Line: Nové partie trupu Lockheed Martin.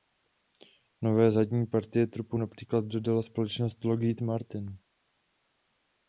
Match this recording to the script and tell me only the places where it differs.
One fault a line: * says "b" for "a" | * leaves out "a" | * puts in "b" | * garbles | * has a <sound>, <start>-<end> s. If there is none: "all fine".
* puts in "zadní"
* puts in "například dodala společnost"